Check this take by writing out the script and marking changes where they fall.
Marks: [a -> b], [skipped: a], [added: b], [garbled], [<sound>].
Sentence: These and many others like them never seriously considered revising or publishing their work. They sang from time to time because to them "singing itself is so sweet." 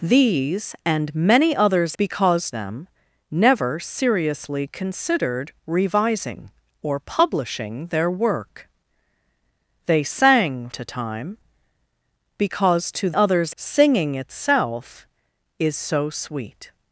These and many others [like -> because] them never seriously considered revising or publishing their work. They sang [skipped: from time] to time because to [them -> others] "singing itself is so sweet."